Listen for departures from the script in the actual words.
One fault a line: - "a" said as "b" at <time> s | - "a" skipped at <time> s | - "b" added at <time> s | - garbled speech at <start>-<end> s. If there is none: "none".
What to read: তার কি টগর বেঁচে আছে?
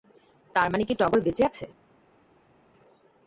- "মানে" added at 0.7 s